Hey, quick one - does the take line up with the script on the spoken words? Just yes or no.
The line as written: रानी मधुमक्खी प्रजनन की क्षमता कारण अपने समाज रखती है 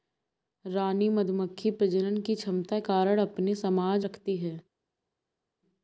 yes